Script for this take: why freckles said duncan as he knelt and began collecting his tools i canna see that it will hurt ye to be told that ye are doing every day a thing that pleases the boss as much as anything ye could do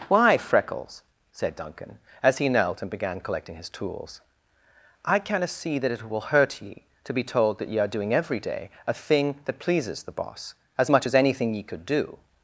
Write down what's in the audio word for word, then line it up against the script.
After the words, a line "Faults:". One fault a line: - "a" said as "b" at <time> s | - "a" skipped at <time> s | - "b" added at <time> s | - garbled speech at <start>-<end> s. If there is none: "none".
why freckles said duncan as he knelt and began collecting his tools i canna see that it will hurt ye to be told that ye are doing every day a thing that pleases the boss as much as anything ye could do
Faults:
none